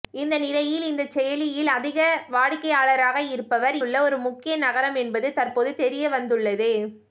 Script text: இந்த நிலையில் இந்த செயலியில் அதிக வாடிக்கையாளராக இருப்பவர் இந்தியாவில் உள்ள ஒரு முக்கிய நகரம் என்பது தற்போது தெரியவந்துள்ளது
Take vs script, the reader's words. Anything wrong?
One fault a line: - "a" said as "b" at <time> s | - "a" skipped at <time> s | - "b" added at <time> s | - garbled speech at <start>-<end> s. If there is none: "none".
- "இந்தியாவில்" skipped at 3.8 s